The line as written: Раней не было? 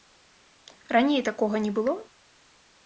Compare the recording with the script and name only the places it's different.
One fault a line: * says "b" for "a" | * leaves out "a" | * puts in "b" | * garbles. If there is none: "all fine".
* puts in "такога"